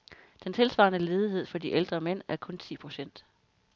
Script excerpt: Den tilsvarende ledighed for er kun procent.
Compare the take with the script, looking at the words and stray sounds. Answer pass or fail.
fail